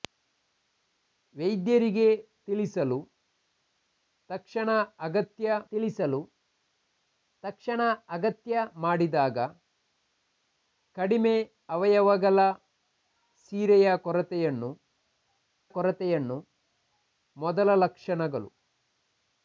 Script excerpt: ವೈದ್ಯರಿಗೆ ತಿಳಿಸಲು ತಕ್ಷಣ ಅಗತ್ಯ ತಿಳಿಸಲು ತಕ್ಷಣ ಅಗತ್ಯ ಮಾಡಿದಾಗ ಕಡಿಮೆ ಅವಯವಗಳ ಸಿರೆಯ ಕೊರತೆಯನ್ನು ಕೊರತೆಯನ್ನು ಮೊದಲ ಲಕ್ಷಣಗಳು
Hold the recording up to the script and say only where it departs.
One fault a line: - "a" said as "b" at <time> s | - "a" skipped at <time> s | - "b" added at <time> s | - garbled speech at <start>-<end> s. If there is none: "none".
none